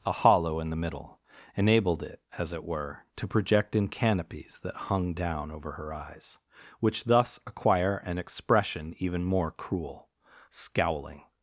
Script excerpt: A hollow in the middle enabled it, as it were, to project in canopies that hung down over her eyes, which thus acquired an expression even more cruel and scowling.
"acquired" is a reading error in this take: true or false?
true